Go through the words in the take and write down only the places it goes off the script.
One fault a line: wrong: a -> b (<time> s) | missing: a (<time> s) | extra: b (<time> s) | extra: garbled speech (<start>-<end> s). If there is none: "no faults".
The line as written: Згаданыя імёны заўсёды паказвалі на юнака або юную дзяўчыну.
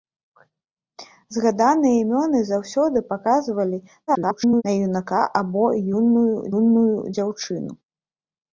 extra: garbled speech (4.1-4.6 s)
extra: юную (6.6 s)